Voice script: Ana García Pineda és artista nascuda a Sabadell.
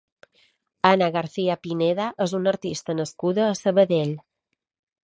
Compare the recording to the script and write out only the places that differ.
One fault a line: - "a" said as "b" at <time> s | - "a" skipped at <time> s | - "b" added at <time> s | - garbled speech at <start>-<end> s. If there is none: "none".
- "una" added at 2.4 s